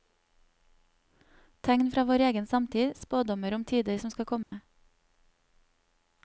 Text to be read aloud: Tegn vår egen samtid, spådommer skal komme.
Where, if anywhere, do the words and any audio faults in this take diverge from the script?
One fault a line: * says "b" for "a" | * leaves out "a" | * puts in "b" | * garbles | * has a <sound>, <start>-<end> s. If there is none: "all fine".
* puts in "fra"
* puts in "om tider som"
* has a dropout, 4.4-4.5 s